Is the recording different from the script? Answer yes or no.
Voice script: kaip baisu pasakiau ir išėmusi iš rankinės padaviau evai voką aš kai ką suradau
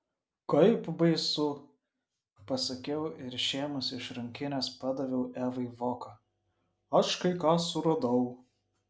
no